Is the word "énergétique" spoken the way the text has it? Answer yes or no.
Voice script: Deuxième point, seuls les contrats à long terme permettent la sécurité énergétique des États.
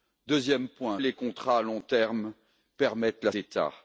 no